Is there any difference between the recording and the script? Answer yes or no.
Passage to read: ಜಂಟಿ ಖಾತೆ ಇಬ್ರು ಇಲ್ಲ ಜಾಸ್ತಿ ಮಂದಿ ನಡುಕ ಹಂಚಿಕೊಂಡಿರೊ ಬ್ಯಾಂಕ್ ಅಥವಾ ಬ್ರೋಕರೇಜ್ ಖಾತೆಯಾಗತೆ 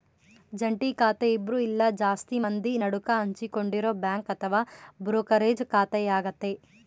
no